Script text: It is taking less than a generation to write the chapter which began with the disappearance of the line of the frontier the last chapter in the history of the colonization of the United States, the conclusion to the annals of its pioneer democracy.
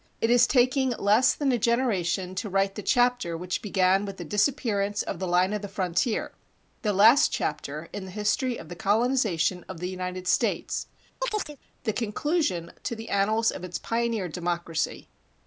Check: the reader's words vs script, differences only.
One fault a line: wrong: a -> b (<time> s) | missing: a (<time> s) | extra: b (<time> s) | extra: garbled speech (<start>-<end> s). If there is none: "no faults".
no faults